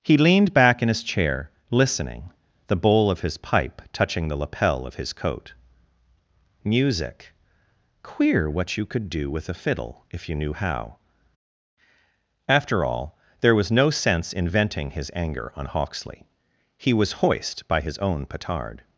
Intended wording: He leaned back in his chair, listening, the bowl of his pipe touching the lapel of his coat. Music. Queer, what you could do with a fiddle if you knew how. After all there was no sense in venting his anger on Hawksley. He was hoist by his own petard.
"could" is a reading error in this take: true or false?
false